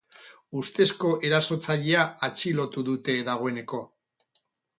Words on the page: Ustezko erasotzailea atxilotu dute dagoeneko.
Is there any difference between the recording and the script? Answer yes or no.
no